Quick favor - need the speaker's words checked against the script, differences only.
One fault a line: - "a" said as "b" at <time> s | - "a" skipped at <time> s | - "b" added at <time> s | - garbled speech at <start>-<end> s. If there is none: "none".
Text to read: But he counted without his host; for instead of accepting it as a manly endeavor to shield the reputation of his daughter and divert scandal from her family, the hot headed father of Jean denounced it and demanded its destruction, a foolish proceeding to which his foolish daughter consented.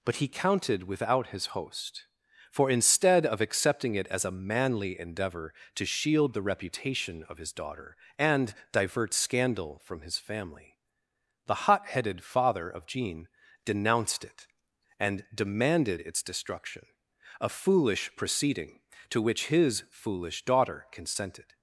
- "her" said as "his" at 10.0 s